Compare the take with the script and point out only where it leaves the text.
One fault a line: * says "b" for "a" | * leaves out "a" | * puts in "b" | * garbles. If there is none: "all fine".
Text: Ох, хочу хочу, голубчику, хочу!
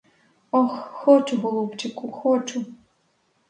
* leaves out "хочу"